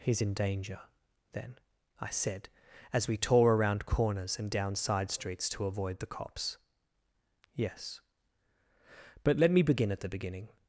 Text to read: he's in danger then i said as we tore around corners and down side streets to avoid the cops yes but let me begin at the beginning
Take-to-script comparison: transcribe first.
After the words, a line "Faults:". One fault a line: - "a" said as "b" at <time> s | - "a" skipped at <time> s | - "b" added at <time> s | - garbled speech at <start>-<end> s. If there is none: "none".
he's in danger then i said as we tore around corners and down side streets to avoid the cops yes but let me begin at the beginning
Faults:
none